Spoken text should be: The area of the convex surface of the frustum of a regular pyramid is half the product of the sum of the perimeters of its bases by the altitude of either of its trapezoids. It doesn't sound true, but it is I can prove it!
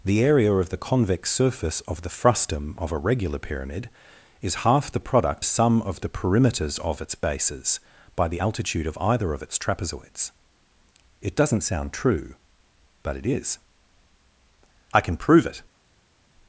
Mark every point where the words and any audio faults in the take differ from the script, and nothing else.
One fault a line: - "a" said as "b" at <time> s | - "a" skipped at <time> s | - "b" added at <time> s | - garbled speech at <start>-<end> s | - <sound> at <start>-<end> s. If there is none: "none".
- "of the" skipped at 5.5 s